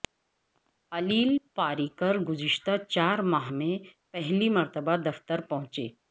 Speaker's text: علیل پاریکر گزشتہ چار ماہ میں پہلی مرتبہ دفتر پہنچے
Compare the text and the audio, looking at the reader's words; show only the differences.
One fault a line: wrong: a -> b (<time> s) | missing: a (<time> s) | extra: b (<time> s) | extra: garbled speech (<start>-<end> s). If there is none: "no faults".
no faults